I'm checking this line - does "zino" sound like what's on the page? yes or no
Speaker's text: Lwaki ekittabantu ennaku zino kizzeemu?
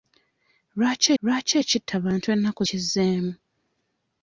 no